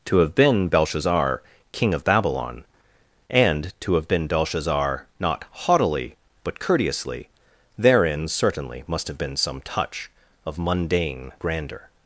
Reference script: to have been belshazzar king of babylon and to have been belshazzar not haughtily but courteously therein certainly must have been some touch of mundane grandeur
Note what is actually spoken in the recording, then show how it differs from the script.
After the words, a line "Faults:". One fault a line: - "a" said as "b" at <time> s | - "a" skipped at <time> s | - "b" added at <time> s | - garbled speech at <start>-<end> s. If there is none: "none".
to have been belshazzar king of babylon and to have been belshazzar not haughtily but courteously therein certainly must have been some touch of mundane grandeur
Faults:
none